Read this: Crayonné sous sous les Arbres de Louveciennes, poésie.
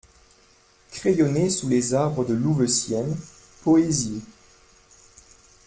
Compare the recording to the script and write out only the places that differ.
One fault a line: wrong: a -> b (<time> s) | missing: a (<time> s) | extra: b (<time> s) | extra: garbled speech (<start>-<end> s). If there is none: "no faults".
missing: sous (1.7 s)